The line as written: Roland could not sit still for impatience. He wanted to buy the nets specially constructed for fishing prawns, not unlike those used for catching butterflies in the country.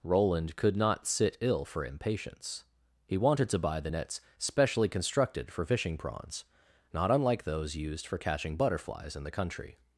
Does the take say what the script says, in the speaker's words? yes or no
no